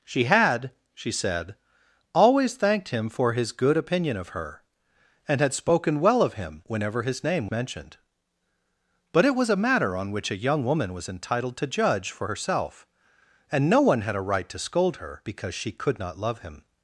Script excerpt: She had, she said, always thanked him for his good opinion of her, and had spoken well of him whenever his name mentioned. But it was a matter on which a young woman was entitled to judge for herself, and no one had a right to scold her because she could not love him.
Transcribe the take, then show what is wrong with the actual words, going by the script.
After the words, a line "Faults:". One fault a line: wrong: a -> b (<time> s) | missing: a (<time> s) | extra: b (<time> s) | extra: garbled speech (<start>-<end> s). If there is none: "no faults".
She had, she said, always thanked him for his good opinion of her, and had spoken well of him whenever his name mentioned. But it was a matter on which a young woman was entitled to judge for herself, and no one had a right to scold her because she could not love him.
Faults:
no faults